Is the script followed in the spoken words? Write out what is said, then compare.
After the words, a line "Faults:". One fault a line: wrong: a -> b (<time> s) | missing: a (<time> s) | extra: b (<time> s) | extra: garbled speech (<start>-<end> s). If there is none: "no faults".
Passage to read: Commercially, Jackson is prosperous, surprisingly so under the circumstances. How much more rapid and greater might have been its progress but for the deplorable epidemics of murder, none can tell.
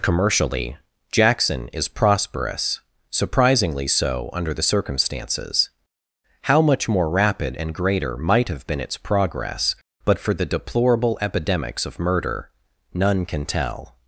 Commercially, Jackson is prosperous, surprisingly so under the circumstances. How much more rapid and greater might have been its progress but for the deplorable epidemics of murder, none can tell.
Faults:
no faults